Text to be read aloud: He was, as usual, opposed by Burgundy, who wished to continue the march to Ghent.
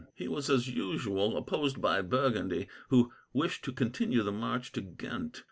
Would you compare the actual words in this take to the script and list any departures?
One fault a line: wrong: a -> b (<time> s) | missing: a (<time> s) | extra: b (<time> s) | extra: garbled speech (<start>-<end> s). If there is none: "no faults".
no faults